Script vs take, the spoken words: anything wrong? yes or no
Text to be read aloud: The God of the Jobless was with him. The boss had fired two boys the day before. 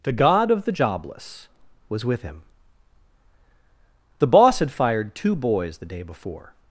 no